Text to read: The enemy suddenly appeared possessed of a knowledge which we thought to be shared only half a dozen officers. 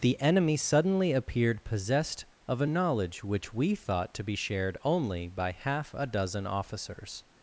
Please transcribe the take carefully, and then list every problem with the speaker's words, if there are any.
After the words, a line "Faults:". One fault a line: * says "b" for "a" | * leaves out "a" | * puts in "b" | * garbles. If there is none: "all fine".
The enemy suddenly appeared possessed of a knowledge which we thought to be shared only by half a dozen officers.
Faults:
* puts in "by"